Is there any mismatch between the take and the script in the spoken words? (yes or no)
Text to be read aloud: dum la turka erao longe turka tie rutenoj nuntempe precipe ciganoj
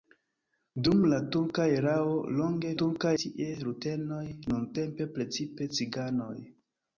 no